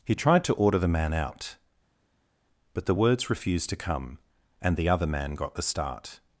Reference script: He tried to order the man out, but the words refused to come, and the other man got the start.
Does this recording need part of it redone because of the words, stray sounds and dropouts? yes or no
no